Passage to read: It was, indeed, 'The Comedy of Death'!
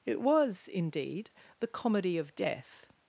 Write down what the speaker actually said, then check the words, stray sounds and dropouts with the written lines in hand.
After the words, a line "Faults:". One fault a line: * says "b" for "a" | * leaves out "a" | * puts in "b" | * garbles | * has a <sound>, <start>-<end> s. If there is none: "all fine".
It was, indeed, 'The Comedy of Death'!
Faults:
all fine